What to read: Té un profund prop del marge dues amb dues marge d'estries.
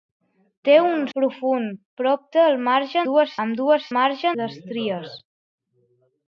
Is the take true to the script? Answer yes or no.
yes